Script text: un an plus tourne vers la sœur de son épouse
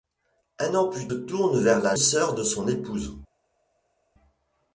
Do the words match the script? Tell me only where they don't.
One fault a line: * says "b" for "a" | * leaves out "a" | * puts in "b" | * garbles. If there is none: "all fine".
all fine